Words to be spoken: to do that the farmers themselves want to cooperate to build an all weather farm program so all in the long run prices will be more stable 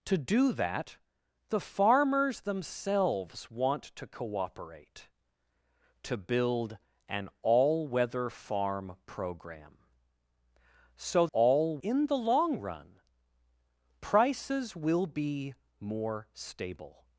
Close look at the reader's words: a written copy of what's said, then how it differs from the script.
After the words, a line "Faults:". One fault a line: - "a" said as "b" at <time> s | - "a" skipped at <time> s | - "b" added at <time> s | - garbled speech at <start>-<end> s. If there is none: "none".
to do that the farmers themselves want to cooperate to build an all weather farm program so all in the long run prices will be more stable
Faults:
none